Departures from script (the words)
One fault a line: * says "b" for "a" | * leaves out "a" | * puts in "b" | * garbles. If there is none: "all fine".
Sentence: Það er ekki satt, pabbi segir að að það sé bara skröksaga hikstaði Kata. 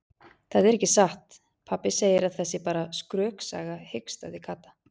all fine